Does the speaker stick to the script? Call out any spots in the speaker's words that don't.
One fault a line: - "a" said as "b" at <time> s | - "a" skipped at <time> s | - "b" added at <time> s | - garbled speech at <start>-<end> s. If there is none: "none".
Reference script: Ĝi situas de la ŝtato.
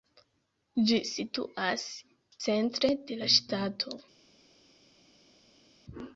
- "centre" added at 2.5 s